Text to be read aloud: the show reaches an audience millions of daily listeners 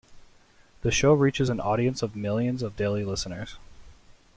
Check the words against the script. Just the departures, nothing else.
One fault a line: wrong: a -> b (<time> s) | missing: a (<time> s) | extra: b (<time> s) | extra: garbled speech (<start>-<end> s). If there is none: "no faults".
extra: of (2.0 s)